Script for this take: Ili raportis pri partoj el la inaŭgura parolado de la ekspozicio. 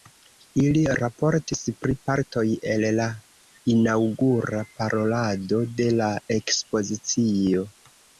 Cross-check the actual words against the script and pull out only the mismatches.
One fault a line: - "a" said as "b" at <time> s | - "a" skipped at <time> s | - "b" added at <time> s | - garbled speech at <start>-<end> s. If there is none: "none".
none